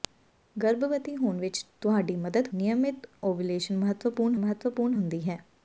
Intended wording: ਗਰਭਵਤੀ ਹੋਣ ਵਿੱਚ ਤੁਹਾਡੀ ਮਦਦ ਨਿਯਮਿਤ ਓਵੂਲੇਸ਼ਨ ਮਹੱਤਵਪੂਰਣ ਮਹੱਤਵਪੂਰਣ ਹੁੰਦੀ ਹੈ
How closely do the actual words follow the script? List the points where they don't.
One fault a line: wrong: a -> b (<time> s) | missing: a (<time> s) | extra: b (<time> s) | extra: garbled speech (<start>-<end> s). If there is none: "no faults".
no faults